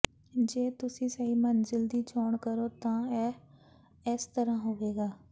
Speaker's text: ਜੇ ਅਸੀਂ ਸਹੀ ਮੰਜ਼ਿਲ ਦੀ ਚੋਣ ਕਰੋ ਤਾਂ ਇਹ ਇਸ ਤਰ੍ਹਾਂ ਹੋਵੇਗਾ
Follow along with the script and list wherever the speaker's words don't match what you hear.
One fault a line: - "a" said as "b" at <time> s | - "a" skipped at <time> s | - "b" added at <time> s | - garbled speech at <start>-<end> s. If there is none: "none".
- "ਅਸੀਂ" said as "ਤੁਸੀਂ" at 0.8 s